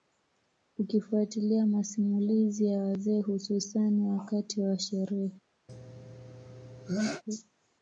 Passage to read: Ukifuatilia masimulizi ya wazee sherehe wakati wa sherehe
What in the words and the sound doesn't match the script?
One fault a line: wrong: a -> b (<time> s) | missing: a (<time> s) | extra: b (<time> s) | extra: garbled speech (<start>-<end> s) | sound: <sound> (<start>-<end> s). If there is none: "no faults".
wrong: sherehe -> hususani (3.2 s)
sound: sneeze (5.7-7.2 s)